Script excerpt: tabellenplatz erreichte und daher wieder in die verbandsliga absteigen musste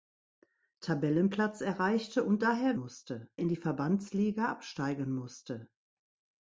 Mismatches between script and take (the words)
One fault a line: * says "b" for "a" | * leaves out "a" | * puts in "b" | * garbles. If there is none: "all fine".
* says "musste" for "wieder"